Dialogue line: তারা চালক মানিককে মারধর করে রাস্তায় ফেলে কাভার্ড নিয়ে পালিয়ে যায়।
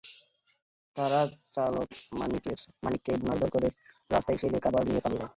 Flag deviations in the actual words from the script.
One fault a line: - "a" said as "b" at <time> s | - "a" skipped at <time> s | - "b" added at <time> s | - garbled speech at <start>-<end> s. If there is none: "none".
none